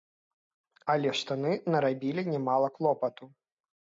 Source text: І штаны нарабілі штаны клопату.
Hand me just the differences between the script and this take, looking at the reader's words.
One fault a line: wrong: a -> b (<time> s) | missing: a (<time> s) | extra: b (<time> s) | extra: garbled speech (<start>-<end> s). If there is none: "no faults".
wrong: І -> Але (0.9 s)
wrong: штаны -> нямала (2.3 s)